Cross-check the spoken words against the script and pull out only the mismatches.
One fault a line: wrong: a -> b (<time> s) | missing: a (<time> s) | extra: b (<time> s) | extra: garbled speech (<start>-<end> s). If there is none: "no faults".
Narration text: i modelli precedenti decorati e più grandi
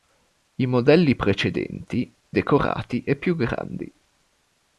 no faults